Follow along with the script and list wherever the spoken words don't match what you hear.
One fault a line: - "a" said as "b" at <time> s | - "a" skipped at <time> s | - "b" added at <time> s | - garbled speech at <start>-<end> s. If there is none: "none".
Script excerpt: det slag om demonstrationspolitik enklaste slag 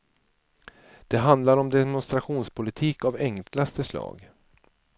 - "slag" said as "handlar" at 1.2 s
- "av" added at 3.0 s